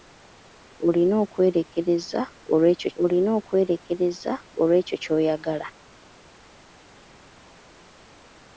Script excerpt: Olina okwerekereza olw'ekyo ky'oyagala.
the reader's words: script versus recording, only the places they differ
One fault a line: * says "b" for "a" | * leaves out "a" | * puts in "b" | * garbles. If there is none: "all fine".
* puts in "olina okwerekereza olw'ekyo"